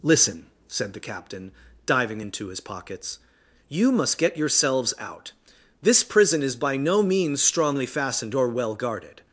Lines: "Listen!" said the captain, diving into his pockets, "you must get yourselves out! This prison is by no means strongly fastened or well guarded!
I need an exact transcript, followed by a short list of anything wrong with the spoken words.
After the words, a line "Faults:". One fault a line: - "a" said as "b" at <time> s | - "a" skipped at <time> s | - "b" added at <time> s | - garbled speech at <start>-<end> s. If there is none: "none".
"Listen!" said the captain, diving into his pockets, "you must get yourselves out! This prison is by no means strongly fastened or well guarded!
Faults:
none